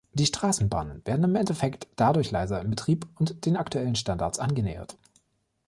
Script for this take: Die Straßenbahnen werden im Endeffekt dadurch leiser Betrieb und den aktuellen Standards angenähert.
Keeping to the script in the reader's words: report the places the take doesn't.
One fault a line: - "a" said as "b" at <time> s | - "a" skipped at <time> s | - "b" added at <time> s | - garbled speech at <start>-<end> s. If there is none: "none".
- "im" added at 2.6 s